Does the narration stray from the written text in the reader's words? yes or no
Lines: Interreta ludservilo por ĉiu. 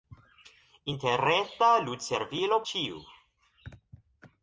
yes